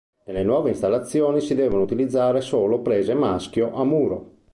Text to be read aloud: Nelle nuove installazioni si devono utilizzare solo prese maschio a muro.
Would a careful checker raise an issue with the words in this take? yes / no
no